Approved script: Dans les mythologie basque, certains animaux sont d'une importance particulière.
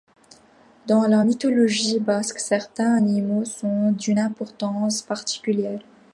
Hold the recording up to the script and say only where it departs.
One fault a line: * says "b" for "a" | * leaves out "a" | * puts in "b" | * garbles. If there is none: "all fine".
* says "la" for "les"